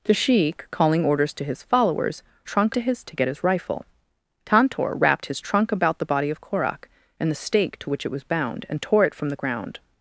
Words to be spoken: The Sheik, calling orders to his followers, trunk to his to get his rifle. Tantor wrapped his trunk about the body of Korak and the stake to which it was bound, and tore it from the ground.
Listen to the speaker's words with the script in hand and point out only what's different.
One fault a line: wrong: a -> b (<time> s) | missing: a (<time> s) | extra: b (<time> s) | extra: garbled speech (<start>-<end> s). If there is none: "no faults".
no faults